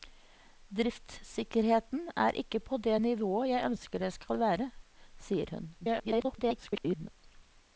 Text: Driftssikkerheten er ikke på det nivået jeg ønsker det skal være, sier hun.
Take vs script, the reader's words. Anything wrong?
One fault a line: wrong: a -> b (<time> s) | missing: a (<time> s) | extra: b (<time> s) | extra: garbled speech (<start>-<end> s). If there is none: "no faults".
extra: garbled speech (5.8-7.1 s)